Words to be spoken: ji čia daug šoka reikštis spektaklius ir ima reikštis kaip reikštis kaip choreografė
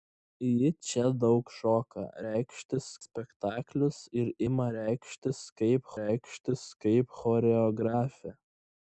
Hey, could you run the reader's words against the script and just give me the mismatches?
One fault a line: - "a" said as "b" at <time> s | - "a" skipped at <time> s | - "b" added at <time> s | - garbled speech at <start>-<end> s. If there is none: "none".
none